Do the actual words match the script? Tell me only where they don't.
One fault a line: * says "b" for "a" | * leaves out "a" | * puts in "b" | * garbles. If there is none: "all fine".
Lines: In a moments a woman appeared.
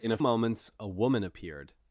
all fine